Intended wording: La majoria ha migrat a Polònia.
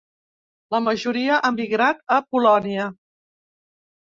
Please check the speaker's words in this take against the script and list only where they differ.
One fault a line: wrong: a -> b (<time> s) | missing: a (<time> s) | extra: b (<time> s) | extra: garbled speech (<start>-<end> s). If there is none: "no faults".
no faults